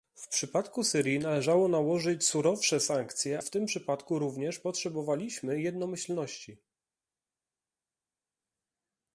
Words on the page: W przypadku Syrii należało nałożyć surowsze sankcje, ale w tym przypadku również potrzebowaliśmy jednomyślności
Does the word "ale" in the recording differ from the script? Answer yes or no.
yes